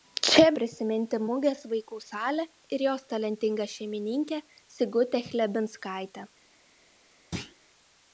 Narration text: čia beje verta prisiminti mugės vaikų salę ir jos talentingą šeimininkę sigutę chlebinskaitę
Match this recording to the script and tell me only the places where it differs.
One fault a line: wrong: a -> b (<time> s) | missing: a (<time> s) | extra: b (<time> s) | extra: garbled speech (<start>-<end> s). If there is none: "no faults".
missing: beje verta (0.5 s)